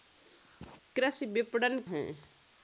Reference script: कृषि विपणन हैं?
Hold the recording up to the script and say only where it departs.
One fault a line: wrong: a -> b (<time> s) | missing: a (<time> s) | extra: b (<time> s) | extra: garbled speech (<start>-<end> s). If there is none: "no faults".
no faults